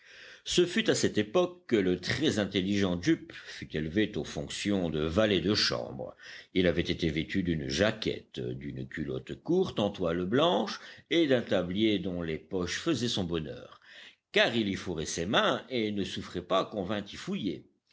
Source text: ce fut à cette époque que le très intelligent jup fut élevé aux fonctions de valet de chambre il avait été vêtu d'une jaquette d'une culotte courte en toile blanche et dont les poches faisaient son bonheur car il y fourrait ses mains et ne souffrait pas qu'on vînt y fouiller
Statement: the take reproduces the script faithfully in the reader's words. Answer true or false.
false